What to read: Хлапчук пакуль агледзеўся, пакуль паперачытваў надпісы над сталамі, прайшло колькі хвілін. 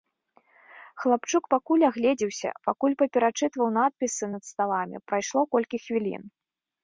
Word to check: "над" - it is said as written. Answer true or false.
true